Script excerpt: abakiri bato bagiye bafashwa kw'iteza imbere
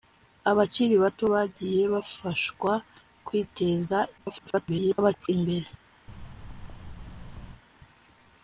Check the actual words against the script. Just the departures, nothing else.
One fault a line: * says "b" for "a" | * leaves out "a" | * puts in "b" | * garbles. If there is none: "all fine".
* garbles